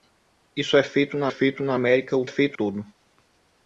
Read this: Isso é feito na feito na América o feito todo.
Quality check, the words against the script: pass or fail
pass